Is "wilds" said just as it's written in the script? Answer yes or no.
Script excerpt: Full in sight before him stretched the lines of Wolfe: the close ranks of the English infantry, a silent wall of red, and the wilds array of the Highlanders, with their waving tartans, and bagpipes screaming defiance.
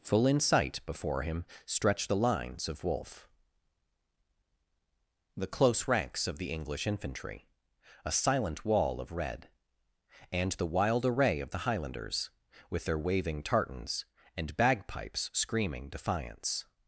no